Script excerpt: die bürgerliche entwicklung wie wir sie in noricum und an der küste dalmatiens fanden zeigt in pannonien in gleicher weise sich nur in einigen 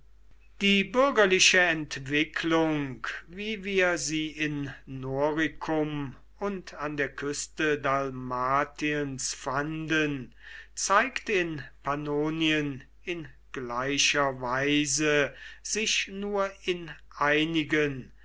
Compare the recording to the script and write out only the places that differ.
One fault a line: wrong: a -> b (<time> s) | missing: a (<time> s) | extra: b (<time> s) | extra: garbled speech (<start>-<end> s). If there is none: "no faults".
no faults